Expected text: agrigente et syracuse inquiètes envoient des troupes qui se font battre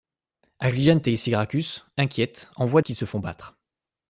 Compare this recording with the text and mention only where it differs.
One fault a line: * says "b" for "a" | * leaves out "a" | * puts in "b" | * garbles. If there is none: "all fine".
* leaves out "des troupes"